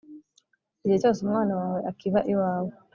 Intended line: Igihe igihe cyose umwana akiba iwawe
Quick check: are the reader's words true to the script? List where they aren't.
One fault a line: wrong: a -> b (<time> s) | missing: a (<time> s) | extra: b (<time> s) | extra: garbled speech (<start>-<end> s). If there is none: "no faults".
missing: igihe (1.0 s)
extra: wawe (1.6 s)